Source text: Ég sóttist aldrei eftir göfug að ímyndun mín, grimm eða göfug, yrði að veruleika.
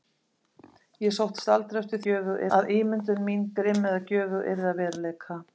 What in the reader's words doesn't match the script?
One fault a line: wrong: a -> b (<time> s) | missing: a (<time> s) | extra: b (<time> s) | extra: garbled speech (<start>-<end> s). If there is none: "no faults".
no faults